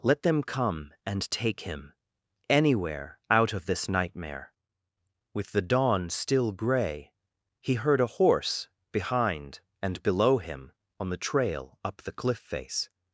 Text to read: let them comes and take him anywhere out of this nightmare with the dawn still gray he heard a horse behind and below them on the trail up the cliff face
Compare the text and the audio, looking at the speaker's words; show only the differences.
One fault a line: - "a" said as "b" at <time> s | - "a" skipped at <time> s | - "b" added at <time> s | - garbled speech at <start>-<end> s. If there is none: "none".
- "comes" said as "come" at 0.4 s
- "them" said as "him" at 10.4 s